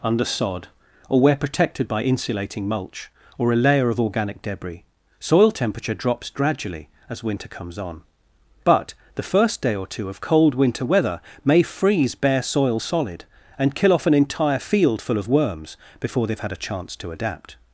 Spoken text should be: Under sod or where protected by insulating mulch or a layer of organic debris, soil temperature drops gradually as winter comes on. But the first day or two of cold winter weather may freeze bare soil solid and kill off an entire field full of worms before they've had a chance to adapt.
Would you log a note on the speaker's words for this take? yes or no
no